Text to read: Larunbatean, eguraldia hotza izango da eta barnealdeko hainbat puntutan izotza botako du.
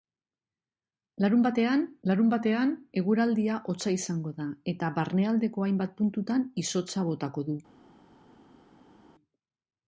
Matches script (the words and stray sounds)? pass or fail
fail